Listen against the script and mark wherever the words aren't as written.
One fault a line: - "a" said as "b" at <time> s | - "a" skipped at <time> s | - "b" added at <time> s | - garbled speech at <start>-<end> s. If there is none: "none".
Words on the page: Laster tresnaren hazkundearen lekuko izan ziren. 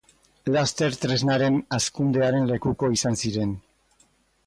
none